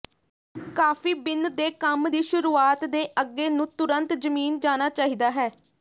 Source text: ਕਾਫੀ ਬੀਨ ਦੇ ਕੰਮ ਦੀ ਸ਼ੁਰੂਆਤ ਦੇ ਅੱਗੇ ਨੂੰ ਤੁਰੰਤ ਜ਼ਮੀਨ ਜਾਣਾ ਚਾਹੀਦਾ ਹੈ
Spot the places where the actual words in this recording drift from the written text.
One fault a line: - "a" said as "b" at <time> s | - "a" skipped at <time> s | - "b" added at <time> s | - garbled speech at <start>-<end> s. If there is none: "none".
none